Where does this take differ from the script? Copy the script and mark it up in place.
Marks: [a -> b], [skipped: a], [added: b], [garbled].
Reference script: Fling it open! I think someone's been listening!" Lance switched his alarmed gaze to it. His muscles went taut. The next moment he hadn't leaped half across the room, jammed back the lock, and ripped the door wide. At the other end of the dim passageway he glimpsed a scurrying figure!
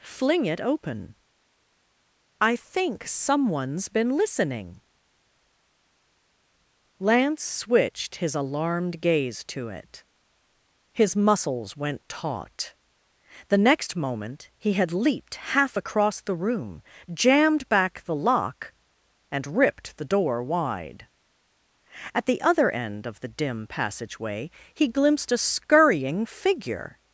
Fling it open! I think someone's been listening!" Lance switched his alarmed gaze to it. His muscles went taut. The next moment he [hadn't -> had] leaped half across the room, jammed back the lock, and ripped the door wide. At the other end of the dim passageway he glimpsed a scurrying figure!